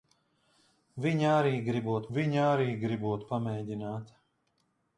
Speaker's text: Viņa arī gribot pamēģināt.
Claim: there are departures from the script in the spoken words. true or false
true